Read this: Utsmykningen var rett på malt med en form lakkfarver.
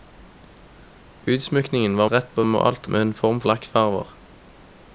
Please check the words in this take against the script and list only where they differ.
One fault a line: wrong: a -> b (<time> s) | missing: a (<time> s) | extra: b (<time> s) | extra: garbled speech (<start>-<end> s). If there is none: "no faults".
no faults